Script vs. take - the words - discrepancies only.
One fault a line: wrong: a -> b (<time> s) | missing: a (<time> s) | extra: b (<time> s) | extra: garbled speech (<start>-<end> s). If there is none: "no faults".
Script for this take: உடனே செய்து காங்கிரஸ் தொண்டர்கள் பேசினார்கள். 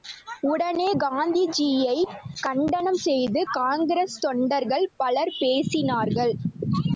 extra: காந்திஜியைக் கண்டனம் (1.0 s)
extra: பலர் (5.0 s)